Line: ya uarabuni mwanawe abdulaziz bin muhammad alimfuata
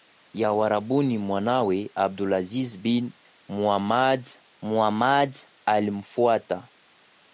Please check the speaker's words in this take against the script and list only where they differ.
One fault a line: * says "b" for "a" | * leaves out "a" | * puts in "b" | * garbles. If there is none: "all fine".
* puts in "muhammad"